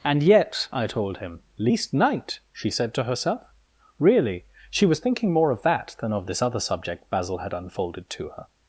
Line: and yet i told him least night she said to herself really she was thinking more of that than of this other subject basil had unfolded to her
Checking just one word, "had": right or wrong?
right